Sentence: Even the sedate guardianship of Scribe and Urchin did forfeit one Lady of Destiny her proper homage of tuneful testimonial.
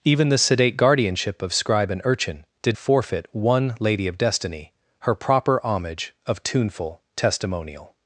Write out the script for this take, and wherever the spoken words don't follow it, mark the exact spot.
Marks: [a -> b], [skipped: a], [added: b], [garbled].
Even the sedate guardianship of Scribe and Urchin did forfeit one Lady of Destiny her proper homage of tuneful testimonial.